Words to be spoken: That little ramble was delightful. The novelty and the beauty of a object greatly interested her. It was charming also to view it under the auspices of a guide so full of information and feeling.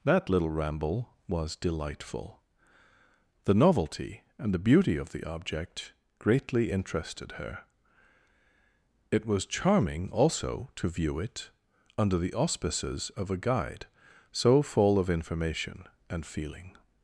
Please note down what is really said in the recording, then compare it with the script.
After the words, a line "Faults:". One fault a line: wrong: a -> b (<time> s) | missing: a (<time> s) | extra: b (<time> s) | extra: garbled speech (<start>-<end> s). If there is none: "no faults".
That little ramble was delightful. The novelty and the beauty of the object greatly interested her. It was charming also to view it under the auspices of a guide so full of information and feeling.
Faults:
wrong: a -> the (5.1 s)